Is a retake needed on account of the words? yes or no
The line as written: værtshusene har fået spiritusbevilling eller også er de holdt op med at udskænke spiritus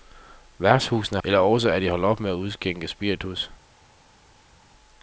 yes